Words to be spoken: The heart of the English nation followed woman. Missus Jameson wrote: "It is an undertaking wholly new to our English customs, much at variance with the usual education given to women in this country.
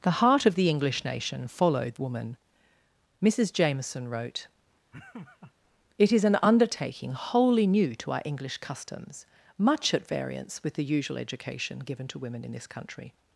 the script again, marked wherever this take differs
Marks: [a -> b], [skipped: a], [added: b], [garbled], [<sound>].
The heart of the English nation followed woman. Missus Jameson wrote: [laugh] "It is an undertaking wholly new to our English customs, much at variance with the usual education given to women in this country.